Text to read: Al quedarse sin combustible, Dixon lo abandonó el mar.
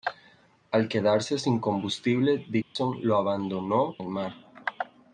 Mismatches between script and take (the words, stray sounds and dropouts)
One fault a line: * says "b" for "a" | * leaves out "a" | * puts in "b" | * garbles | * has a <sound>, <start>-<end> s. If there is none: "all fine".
* has a dropout, 2.6-2.8 s